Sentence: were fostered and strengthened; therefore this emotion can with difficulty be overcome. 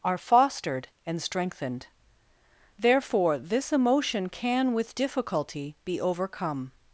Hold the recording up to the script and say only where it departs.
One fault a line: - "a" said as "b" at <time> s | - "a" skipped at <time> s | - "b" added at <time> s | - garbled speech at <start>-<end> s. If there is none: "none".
- "were" said as "are" at 0.0 s